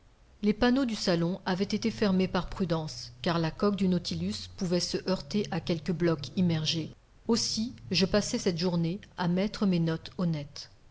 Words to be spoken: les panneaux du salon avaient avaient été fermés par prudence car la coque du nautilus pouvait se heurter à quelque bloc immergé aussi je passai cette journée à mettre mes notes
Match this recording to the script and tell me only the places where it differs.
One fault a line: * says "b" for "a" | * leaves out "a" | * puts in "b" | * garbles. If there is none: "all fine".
* leaves out "avaient"